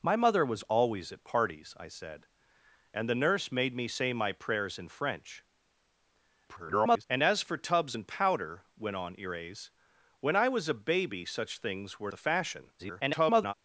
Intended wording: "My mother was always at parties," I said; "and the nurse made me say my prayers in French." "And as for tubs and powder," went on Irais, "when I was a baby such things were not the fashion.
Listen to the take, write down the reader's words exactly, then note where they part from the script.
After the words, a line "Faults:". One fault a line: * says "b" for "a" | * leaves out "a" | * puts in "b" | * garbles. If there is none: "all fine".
"My mother was always at parties," I said; "and the nurse made me say my prayers in French." [garbled] "And as for tubs and powder," went on Irais, "when I was a baby such things were the fashion. [garbled]
Faults:
* garbles
* leaves out "not"
* garbles